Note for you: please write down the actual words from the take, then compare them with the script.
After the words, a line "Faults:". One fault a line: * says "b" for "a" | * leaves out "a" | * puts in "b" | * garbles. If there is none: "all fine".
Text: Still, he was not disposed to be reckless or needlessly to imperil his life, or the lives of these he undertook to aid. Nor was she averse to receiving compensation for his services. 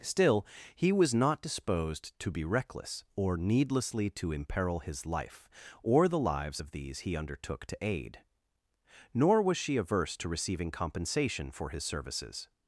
Still, he was not disposed to be reckless or needlessly to imperil his life, or the lives of these he undertook to aid. Nor was she averse to receiving compensation for his services.
Faults:
all fine